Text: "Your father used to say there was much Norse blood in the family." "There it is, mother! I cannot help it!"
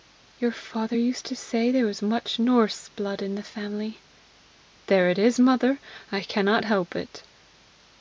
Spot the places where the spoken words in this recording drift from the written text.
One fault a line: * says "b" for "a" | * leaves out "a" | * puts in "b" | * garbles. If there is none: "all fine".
all fine